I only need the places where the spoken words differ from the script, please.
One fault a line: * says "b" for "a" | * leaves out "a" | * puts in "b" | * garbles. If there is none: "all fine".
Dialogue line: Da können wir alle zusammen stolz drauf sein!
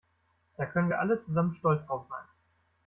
all fine